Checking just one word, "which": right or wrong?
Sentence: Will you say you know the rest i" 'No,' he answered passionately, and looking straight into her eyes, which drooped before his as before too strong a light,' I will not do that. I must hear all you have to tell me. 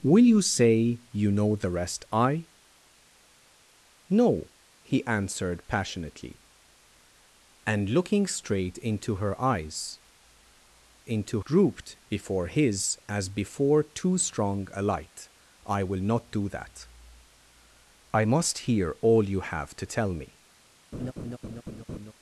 wrong